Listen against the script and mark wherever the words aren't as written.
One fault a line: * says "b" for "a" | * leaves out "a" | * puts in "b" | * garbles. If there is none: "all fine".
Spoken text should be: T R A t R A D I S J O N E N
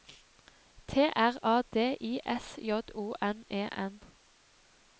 * leaves out "t R A"